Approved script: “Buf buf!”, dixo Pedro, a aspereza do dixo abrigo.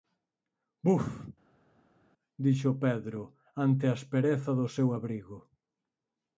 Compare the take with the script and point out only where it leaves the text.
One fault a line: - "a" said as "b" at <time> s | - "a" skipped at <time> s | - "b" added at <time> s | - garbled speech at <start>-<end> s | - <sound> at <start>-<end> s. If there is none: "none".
- "buf" skipped at 1.1 s
- "ante" added at 3.7 s
- "dixo" said as "seu" at 4.8 s